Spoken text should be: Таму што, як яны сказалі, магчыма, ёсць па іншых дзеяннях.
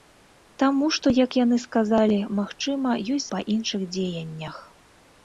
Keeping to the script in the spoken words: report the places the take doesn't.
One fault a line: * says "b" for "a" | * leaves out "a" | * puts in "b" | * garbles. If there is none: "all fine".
all fine